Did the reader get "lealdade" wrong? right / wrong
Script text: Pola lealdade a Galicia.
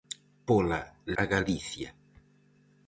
wrong